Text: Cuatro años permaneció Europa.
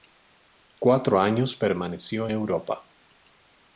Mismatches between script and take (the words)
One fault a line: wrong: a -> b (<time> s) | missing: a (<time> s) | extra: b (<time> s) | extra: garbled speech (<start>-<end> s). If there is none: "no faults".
no faults